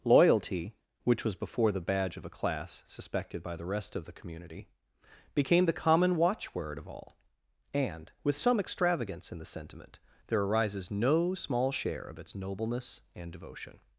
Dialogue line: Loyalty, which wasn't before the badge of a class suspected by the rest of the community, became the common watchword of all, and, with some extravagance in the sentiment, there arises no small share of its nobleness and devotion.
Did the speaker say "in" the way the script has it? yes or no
yes